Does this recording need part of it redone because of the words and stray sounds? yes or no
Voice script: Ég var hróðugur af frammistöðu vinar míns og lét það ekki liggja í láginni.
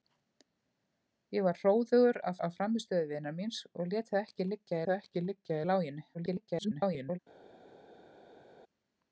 yes